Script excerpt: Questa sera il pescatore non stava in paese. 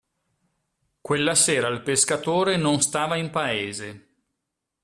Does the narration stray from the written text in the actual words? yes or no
yes